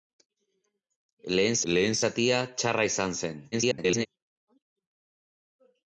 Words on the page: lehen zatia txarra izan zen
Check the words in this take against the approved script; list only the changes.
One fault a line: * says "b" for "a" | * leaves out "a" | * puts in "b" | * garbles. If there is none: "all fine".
* puts in "lehen"
* garbles